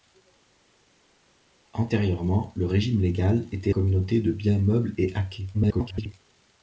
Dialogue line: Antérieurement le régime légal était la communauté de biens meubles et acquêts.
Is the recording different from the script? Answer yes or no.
yes